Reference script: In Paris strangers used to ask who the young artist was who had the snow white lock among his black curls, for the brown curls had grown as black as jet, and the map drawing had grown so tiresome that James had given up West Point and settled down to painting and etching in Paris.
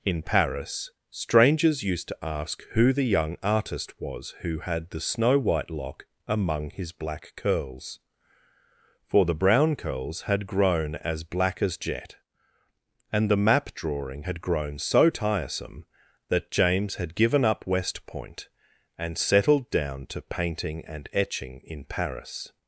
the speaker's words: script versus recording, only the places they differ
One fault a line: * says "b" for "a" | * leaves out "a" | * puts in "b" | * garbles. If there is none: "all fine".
all fine